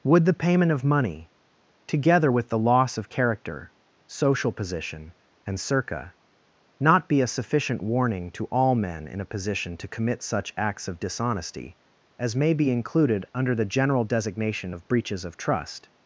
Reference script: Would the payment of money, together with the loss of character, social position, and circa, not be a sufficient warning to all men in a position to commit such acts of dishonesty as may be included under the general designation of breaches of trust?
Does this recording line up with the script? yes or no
yes